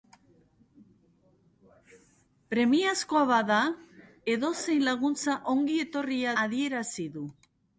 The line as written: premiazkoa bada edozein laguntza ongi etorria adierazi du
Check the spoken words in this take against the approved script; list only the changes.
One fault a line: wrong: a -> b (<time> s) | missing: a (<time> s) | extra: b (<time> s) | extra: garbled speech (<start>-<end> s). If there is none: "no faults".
no faults